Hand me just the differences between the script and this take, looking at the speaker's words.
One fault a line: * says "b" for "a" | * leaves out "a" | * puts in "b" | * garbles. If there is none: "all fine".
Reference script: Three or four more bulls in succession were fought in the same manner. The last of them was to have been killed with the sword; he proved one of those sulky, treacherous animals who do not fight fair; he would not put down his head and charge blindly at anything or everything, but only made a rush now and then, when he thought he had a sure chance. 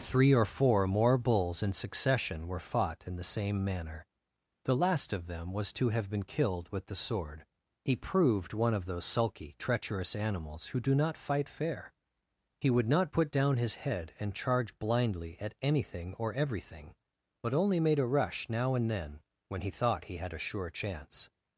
all fine